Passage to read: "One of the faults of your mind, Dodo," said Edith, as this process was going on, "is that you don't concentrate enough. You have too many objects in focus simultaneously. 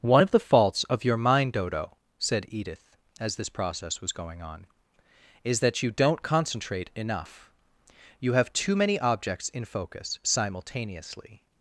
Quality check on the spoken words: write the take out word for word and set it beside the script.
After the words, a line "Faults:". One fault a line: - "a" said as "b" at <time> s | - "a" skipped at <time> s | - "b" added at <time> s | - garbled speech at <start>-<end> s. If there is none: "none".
"One of the faults of your mind, Dodo," said Edith, as this process was going on, "is that you don't concentrate enough. You have too many objects in focus simultaneously.
Faults:
none